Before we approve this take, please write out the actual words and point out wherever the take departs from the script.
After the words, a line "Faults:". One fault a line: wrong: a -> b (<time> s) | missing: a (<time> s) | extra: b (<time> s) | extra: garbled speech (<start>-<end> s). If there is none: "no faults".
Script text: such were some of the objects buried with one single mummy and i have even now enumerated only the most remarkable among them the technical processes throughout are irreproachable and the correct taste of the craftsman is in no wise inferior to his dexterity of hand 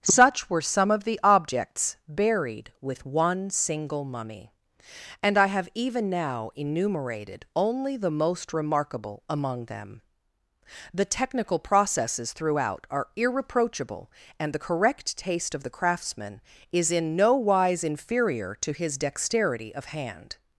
such were some of the objects buried with one single mummy and i have even now enumerated only the most remarkable among them the technical processes throughout are irreproachable and the correct taste of the craftsman is in no wise inferior to his dexterity of hand
Faults:
no faults